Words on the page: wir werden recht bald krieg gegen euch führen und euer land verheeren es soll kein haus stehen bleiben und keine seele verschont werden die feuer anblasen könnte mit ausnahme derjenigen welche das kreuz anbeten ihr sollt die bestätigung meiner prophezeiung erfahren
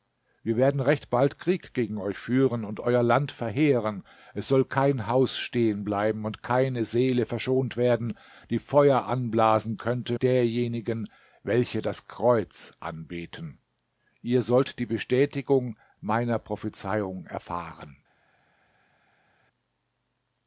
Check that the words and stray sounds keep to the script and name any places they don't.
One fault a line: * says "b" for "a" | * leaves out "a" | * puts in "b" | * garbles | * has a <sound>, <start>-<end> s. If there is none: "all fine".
* leaves out "mit ausnahme"